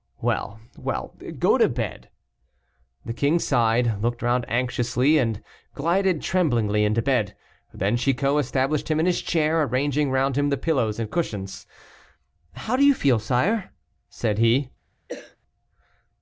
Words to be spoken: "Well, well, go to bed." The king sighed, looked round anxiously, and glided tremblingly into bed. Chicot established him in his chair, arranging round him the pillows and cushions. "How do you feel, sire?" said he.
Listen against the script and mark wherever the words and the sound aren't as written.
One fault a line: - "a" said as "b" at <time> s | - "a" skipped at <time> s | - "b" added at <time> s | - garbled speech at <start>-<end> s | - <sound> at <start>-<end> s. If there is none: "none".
- "Then" added at 7.7 s
- cough at 15.1-15.4 s